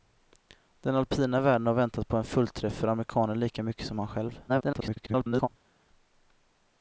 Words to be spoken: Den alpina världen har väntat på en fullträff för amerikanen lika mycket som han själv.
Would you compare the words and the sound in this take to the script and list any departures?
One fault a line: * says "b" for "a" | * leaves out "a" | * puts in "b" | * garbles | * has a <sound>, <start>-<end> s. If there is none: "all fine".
* garbles